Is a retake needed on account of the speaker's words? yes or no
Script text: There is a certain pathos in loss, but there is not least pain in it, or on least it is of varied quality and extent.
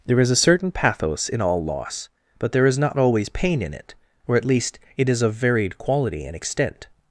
yes